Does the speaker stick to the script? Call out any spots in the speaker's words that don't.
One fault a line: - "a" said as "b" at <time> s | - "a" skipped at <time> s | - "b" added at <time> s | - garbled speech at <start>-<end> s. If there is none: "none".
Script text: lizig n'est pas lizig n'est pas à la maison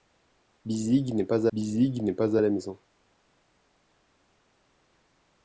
none